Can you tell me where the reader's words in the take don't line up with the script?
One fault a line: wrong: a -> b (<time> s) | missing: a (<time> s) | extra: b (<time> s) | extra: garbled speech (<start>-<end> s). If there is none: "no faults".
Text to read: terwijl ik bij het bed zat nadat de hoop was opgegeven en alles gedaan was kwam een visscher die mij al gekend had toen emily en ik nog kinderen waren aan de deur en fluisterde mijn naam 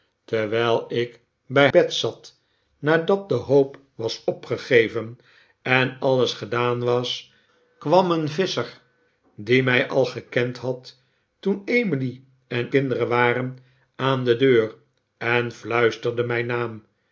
missing: het (1.7 s)
missing: ik nog (12.7 s)